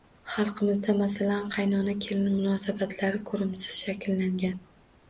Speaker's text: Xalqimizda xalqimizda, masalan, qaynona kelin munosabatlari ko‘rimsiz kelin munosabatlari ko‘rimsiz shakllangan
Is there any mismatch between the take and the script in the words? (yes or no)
yes